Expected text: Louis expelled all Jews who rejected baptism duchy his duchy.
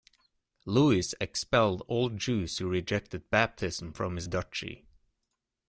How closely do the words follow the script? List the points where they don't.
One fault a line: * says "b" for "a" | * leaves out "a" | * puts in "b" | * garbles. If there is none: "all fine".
* says "from" for "duchy"